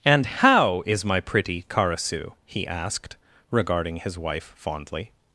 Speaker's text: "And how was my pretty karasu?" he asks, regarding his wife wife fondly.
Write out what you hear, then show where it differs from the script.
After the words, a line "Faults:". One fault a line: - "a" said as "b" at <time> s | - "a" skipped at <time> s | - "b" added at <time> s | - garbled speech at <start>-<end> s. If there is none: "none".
"And how is my pretty karasu?" he asked, regarding his wife fondly.
Faults:
- "was" said as "is" at 0.9 s
- "asks" said as "asked" at 2.7 s
- "wife" skipped at 4.5 s